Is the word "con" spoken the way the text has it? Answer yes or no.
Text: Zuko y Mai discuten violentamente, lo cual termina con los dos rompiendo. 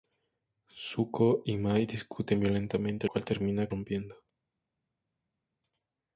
no